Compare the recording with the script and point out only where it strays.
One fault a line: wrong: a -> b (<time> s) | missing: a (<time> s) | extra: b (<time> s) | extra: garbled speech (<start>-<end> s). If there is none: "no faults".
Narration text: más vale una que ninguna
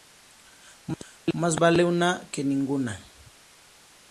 no faults